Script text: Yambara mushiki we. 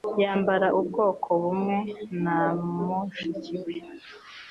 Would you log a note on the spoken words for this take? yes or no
yes